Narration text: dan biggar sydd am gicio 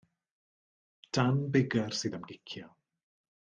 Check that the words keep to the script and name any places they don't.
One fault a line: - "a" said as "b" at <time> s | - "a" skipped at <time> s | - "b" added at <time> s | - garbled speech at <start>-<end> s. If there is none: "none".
none